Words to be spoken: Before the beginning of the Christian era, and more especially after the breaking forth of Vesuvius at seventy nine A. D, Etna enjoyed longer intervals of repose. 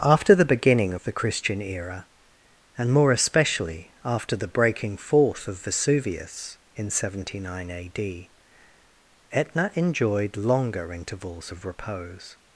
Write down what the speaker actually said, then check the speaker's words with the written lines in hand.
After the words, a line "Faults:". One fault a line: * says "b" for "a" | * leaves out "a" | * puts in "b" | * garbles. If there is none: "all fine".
After the beginning of the Christian era, and more especially after the breaking forth of Vesuvius in seventy nine A. D, Etna enjoyed longer intervals of repose.
Faults:
* says "After" for "Before"
* says "in" for "at"